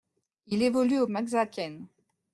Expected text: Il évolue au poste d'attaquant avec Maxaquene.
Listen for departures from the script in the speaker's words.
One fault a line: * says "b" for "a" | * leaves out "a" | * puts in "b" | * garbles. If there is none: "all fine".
* leaves out "poste d'attaquant avec"